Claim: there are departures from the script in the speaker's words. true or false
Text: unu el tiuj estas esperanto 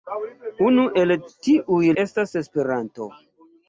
false